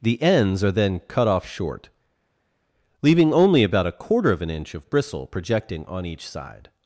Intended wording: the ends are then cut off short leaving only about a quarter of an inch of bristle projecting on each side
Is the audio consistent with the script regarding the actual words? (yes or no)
yes